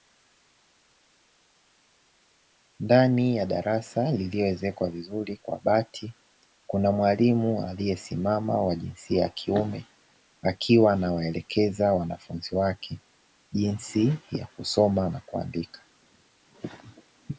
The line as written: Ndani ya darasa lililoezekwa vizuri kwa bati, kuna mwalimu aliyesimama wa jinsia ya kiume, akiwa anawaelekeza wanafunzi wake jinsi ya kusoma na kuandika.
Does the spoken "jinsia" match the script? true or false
true